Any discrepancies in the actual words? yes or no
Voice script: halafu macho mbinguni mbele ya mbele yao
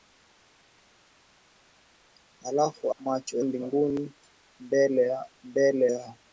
no